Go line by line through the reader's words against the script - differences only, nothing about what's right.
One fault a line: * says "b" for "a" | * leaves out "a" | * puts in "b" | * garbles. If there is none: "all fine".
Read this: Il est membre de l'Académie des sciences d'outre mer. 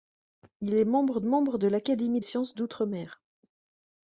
* puts in "membre"
* leaves out "des"